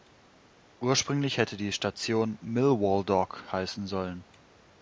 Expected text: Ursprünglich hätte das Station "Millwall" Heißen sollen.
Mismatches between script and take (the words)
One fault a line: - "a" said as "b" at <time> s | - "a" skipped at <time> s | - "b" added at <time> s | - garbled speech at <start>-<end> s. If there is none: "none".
- "das" said as "die" at 1.6 s
- "Dock" added at 3.0 s